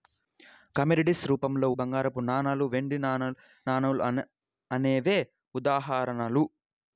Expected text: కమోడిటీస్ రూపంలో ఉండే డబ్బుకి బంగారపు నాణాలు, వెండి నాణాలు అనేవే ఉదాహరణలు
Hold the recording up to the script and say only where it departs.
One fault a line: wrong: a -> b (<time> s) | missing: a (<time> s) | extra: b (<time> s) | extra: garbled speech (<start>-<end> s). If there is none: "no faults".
missing: ఉండే డబ్బుకి (1.7 s)